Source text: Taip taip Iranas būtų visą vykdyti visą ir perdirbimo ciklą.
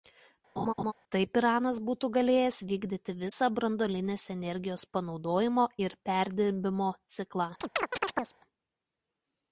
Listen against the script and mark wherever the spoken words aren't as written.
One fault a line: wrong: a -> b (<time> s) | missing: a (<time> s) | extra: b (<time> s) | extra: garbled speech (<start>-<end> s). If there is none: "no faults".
missing: taip (1.4 s)
wrong: visą -> galėjęs (2.2 s)
extra: branduolinės energijos panaudojimo (3.6 s)